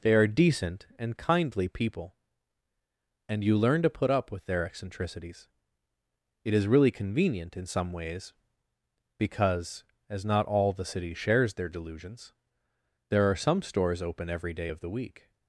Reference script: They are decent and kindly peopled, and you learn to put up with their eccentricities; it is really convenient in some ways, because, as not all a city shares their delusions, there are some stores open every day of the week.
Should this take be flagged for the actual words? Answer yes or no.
yes